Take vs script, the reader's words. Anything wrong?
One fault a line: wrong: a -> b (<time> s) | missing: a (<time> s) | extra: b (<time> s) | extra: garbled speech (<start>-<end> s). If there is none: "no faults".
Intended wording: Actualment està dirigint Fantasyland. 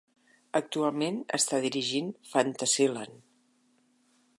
no faults